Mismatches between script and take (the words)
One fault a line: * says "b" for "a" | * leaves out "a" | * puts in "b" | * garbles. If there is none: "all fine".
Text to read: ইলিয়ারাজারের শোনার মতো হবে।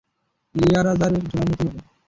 all fine